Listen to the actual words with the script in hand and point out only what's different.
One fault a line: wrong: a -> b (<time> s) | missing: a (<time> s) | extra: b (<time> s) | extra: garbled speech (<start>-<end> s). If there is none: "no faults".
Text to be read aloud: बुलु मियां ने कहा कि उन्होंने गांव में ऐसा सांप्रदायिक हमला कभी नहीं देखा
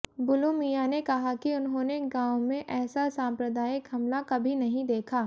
no faults